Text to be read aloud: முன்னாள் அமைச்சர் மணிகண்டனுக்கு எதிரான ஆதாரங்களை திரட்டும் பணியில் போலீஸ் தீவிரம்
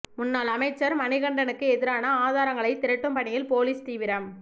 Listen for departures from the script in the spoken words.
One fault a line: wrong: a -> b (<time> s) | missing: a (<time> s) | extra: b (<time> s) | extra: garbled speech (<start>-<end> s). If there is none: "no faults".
no faults